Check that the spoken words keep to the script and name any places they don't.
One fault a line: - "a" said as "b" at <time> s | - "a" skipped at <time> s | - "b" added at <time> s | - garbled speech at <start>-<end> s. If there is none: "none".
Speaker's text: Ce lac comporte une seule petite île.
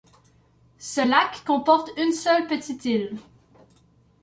none